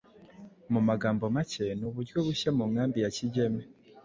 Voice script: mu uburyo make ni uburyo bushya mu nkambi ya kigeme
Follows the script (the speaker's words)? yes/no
no